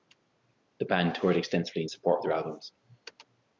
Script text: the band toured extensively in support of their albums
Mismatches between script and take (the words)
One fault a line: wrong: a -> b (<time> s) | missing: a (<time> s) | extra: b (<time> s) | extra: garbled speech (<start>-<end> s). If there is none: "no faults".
no faults